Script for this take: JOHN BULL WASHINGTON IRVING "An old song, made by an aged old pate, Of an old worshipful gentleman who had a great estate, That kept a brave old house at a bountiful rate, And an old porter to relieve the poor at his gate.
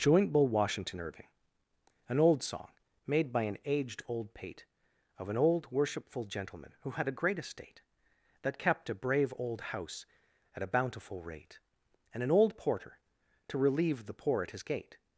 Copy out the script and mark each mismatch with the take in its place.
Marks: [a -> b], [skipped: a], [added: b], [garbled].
[JOHN -> Joint] BULL WASHINGTON IRVING "An old song, made by an aged old pate, Of an old worshipful gentleman who had a great estate, That kept a brave old house at a bountiful rate, And an old porter to relieve the poor at his gate.